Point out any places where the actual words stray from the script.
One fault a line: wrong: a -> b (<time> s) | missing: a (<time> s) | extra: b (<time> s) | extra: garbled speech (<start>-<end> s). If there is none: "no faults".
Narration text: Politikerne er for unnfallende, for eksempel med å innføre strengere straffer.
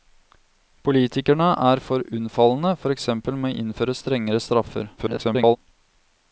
extra: garbled speech (5.0-5.6 s)